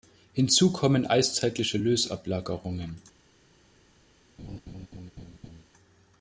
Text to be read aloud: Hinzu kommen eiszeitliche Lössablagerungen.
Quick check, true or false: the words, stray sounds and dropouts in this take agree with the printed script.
false